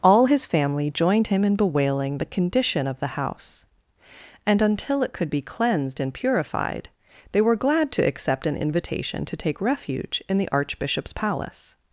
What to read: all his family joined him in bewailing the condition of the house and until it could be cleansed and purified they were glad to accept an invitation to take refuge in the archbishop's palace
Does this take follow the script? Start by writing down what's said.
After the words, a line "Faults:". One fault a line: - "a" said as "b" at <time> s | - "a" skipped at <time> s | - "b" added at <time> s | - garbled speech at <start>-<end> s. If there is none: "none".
all his family joined him in bewailing the condition of the house and until it could be cleansed and purified they were glad to accept an invitation to take refuge in the archbishop's palace
Faults:
none